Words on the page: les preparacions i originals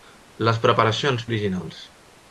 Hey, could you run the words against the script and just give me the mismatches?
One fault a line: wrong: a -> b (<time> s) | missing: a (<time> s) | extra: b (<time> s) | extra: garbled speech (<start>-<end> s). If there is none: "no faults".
no faults